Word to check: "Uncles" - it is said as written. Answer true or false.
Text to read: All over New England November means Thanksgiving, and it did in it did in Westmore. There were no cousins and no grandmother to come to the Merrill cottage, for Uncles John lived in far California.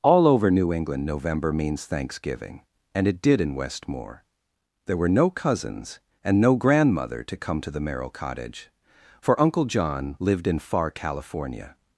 false